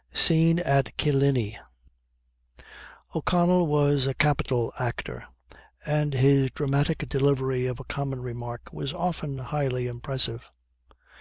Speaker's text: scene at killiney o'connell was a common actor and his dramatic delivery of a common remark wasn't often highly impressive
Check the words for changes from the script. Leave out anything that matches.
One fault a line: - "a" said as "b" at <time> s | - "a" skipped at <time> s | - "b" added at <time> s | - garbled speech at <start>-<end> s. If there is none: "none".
- "common" said as "capital" at 4.2 s
- "wasn't" said as "was" at 8.7 s